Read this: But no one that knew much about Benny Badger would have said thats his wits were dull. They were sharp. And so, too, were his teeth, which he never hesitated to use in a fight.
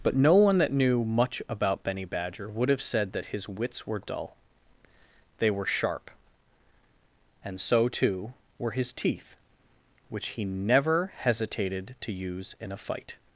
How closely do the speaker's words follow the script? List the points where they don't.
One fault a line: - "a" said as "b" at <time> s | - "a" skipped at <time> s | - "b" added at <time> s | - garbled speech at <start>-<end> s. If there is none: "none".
- "thats" said as "that" at 3.1 s